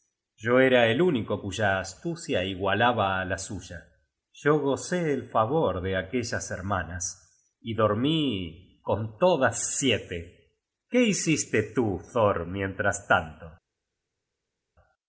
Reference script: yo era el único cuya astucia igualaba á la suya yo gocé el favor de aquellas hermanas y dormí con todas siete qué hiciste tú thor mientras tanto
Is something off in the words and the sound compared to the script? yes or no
no